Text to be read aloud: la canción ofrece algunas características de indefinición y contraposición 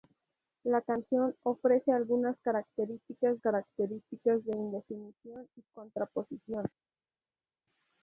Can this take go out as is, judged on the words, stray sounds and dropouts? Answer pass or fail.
fail